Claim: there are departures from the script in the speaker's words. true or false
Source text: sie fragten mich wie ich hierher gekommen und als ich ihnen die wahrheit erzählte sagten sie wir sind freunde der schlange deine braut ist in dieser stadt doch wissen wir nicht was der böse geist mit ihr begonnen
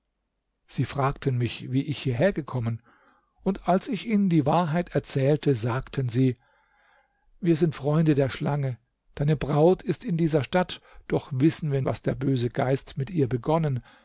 true